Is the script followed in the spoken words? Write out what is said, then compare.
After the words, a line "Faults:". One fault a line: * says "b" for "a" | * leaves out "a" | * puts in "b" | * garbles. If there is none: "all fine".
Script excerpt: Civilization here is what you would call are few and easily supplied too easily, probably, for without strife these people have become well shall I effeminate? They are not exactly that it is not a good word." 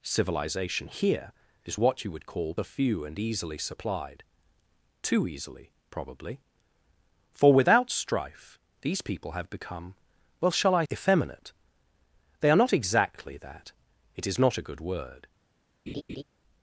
Civilization here is what you would call are few and easily supplied too easily, probably, for without strife these people have become well shall I effeminate? They are not exactly that it is not a good word."
Faults:
all fine